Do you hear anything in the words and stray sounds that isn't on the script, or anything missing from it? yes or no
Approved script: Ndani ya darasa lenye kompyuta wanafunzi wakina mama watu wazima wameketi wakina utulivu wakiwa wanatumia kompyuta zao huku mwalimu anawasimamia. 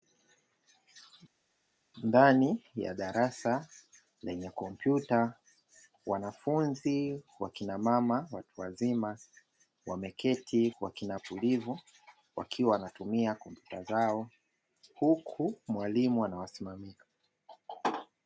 no